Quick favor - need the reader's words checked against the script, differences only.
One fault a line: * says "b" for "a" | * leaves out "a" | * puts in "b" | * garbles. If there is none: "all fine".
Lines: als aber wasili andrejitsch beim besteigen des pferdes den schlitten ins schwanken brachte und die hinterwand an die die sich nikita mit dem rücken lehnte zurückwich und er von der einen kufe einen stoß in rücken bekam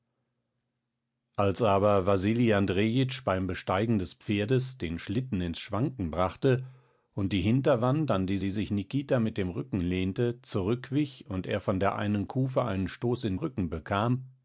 all fine